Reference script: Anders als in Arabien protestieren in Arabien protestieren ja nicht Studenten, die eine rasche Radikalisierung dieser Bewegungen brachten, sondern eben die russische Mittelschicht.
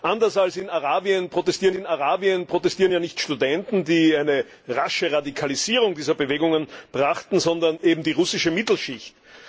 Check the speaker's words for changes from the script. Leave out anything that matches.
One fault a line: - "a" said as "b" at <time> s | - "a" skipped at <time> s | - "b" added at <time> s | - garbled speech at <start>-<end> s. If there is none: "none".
none